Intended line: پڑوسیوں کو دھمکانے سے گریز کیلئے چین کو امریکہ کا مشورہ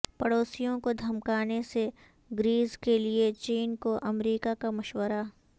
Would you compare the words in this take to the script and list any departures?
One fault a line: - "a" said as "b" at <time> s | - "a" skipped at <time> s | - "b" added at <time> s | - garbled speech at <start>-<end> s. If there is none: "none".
none